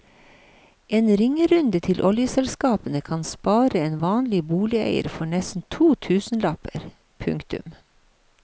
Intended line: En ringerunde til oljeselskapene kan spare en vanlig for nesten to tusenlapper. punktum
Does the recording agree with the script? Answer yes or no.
no